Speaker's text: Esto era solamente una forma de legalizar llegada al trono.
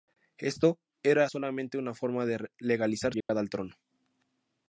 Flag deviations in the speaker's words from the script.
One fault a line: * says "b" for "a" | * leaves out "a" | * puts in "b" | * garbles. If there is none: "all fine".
all fine